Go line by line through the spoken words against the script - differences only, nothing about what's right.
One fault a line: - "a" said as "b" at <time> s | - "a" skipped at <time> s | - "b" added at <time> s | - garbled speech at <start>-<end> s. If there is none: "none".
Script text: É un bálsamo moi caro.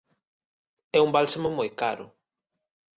none